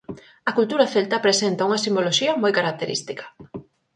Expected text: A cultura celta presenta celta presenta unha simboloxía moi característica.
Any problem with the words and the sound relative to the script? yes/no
yes